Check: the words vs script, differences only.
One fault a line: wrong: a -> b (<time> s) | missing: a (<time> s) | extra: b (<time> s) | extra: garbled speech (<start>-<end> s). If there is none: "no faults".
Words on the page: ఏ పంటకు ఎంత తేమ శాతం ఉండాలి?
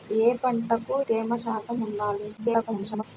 missing: ఎంత (0.9 s)
extra: garbled speech (2.4-3.0 s)